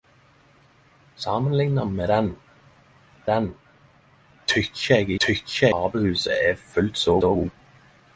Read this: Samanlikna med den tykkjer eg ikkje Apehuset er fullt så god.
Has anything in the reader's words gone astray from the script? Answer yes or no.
yes